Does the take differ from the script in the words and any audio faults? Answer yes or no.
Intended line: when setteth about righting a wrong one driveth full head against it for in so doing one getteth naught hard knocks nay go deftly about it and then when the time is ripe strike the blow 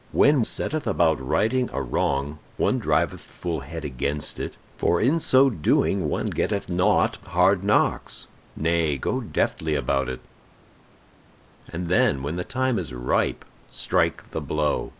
no